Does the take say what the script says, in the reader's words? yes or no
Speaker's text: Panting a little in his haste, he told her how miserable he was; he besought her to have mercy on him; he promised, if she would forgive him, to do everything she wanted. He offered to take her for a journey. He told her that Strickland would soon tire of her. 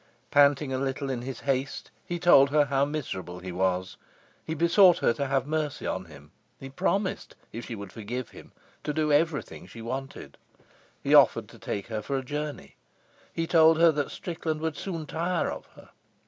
yes